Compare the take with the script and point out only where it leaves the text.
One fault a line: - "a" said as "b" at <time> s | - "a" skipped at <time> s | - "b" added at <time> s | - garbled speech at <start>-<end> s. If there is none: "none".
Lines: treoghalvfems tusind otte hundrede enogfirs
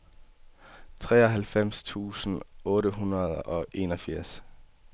- "og" added at 3.4 s